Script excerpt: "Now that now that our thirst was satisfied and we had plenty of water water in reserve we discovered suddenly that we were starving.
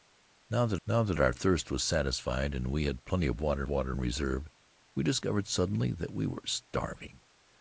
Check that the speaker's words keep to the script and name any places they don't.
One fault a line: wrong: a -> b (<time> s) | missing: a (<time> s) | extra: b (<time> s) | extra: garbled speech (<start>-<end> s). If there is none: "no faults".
no faults